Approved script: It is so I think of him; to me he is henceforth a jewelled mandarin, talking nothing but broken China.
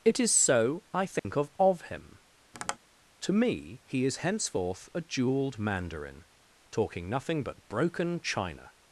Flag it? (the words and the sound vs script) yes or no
yes